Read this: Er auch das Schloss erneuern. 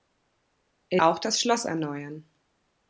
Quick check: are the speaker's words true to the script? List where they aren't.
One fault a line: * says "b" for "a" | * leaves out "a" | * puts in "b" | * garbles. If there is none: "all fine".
all fine